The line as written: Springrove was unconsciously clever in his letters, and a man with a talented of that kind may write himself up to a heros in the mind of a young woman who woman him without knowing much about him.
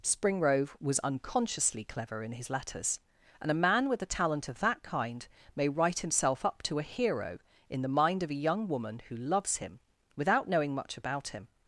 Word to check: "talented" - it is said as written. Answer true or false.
false